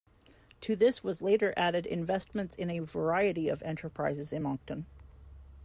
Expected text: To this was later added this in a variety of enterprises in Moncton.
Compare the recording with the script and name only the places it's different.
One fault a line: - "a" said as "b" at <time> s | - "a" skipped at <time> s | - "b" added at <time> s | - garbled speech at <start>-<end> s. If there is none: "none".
- "this" said as "investments" at 1.9 s